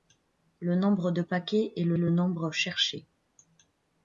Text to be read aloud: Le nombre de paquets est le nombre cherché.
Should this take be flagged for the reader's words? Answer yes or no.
yes